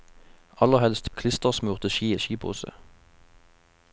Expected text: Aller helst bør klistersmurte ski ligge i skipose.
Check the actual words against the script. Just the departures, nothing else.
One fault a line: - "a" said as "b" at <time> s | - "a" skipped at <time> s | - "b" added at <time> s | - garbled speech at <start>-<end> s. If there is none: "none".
- "bør" skipped at 1.1 s
- "ligge" skipped at 2.2 s